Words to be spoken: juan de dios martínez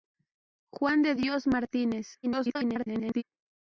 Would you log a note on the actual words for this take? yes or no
yes